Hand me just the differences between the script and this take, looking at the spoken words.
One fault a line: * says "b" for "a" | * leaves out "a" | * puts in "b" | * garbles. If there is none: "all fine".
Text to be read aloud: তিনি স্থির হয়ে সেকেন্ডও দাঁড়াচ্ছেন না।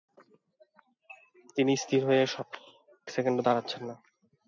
all fine